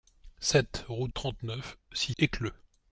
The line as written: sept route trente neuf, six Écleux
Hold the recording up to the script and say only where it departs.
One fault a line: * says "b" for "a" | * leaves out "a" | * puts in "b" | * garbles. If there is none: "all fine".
all fine